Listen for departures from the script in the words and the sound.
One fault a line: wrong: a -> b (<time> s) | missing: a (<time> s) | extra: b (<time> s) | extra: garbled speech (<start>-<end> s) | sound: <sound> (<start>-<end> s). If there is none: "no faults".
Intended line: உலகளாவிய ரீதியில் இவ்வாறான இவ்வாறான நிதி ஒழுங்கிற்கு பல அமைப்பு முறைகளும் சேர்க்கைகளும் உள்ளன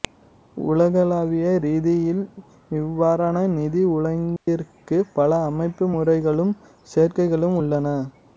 missing: இவ்வாறான (3.4 s)
sound: dropout (4.4-4.5 s)